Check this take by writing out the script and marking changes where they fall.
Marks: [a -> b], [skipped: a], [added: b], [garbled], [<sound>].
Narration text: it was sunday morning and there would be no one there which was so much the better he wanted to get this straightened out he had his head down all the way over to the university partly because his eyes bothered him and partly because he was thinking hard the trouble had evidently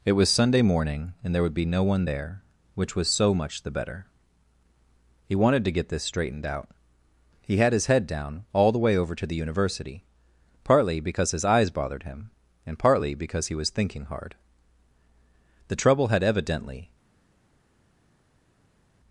it was sunday morning and there would be no one there which was so much the better he wanted to get this straightened out he had his head down all the way over to the university partly because his eyes bothered him and partly because he was thinking hard the trouble had evidently